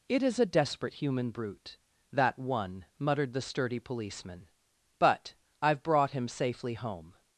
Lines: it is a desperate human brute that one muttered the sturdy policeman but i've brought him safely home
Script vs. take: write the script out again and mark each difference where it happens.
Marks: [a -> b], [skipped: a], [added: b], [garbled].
it is a desperate human brute that one muttered the sturdy policeman but i've brought him safely home